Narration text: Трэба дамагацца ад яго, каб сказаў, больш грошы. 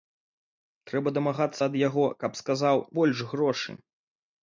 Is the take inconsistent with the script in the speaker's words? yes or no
no